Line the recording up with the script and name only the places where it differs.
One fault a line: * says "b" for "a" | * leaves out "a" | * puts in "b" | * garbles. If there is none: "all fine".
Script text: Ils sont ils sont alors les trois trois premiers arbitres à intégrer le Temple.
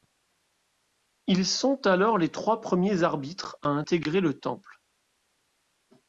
* leaves out "ils sont"
* leaves out "trois"